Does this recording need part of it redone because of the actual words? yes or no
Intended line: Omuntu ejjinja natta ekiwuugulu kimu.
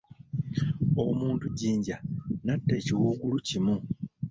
no